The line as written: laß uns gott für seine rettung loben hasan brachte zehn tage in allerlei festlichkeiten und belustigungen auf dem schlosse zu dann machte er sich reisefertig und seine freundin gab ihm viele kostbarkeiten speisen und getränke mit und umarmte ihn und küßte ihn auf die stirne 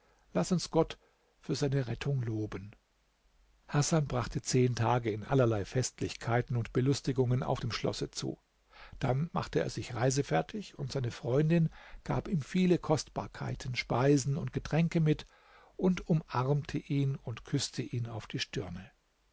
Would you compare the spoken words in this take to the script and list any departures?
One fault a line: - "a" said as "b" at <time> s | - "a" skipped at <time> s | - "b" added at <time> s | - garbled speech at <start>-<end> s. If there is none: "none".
none